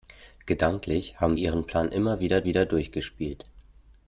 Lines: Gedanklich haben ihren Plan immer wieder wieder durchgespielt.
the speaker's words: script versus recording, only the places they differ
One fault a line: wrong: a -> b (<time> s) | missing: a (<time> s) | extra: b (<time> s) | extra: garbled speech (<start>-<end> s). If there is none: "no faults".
no faults